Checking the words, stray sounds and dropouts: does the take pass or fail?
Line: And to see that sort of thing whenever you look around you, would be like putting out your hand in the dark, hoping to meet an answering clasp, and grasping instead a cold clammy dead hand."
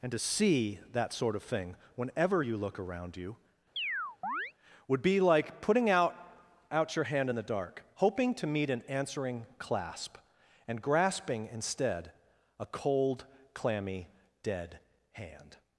fail